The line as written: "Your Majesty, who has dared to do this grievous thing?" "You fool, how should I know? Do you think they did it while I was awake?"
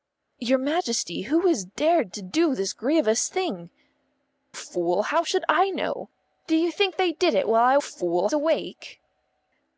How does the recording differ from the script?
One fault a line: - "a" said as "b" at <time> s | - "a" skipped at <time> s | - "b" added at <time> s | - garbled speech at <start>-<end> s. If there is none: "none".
- "You" skipped at 3.7 s
- "was" said as "fool" at 7.8 s